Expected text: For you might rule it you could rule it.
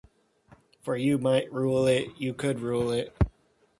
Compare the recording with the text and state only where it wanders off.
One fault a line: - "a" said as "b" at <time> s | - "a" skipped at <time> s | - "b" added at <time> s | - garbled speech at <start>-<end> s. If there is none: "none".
none